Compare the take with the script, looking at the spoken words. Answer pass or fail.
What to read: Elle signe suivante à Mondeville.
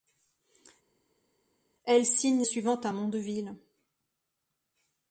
pass